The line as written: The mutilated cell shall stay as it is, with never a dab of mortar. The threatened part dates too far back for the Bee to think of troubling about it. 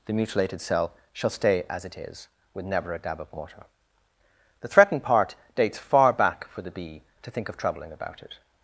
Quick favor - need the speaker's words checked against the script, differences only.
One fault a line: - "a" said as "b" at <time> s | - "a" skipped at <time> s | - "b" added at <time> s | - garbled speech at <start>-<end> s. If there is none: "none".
- "too" skipped at 5.8 s